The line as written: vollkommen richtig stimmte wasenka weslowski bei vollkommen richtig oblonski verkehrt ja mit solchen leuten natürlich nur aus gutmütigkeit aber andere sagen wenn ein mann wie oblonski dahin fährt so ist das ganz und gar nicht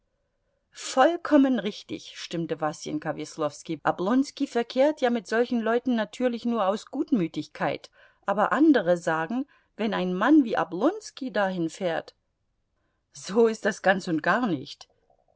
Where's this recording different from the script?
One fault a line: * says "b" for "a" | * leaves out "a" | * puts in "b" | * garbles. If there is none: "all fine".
* leaves out "bei vollkommen richtig"